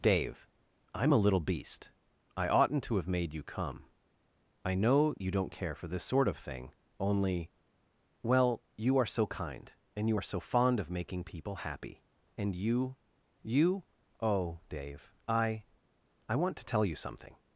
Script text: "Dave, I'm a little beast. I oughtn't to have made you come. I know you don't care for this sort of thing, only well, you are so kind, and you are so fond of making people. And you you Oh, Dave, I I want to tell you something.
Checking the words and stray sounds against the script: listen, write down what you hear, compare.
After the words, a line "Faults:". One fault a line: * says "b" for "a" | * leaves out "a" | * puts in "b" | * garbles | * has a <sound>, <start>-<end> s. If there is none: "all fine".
"Dave, I'm a little beast. I oughtn't to have made you come. I know you don't care for this sort of thing, only well, you are so kind, and you are so fond of making people happy. And you you Oh, Dave, I I want to tell you something.
Faults:
* puts in "happy"